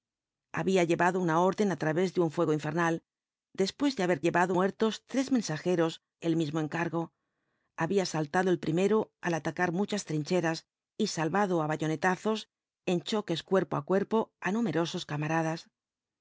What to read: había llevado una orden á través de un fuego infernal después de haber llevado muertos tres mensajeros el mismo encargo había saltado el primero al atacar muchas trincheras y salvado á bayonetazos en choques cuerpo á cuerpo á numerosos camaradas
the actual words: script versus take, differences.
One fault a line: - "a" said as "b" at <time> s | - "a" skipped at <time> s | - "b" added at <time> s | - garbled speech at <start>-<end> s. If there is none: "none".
none